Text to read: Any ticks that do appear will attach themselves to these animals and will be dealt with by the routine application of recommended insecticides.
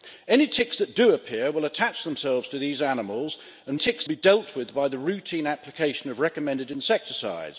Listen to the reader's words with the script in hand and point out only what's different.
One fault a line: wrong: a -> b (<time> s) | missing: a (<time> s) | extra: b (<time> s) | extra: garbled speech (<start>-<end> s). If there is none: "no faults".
wrong: will -> ticks (3.7 s)